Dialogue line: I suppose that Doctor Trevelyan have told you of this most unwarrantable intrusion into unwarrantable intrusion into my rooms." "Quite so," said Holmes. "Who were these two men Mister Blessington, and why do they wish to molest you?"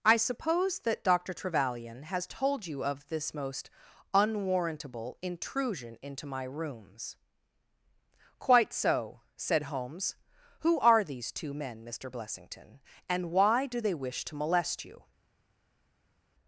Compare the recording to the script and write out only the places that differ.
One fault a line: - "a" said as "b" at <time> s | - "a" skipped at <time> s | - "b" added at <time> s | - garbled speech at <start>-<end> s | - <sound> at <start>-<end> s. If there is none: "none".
- "have" said as "has" at 2.0 s
- "unwarrantable intrusion into" skipped at 6.3 s
- "were" said as "are" at 10.8 s